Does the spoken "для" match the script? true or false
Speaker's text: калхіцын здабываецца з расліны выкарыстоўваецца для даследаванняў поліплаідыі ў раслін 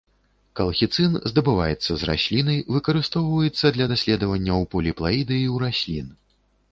true